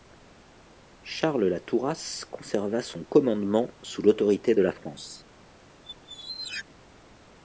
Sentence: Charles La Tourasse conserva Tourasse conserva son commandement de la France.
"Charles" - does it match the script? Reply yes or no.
yes